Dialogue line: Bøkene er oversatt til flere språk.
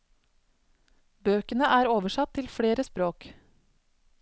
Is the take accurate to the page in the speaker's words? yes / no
yes